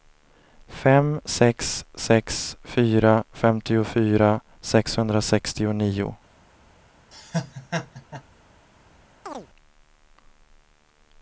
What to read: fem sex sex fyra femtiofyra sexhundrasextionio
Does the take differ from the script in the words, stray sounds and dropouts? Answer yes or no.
yes